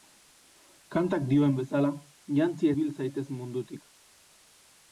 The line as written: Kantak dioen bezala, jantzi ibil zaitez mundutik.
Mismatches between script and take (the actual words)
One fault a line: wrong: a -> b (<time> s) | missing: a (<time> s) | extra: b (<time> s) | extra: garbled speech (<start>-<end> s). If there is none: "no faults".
no faults